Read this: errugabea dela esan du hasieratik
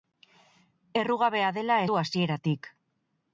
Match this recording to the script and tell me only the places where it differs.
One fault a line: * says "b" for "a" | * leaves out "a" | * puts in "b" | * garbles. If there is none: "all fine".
* leaves out "esan"